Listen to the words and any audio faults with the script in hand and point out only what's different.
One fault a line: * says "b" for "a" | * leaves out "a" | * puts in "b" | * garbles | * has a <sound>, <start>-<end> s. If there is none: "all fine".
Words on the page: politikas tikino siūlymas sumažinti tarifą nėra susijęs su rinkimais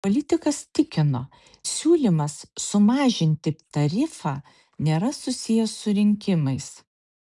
all fine